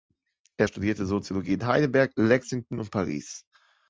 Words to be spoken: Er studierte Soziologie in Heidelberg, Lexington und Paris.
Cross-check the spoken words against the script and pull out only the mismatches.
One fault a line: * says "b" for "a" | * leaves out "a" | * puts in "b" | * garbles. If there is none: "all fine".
all fine